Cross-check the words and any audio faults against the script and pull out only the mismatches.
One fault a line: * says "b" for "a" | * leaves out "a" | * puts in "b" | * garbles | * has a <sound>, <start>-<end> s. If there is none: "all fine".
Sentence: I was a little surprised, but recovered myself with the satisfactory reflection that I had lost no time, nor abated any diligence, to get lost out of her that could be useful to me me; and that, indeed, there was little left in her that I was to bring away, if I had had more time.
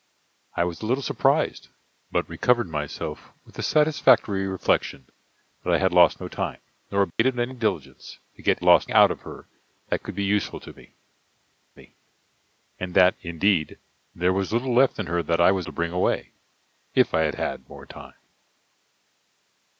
* has a dropout, 7.1-7.2 s